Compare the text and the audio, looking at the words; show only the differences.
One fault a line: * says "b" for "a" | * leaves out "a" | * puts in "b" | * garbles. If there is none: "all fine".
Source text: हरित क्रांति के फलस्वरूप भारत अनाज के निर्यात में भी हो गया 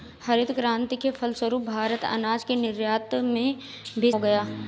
all fine